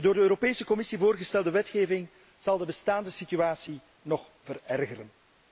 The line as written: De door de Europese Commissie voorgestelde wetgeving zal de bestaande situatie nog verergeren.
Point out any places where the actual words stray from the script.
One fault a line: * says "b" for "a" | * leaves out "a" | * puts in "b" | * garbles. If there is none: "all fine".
all fine